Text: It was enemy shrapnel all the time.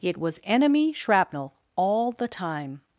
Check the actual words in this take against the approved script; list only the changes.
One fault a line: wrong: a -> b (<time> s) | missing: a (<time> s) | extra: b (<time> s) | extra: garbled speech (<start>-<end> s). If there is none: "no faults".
no faults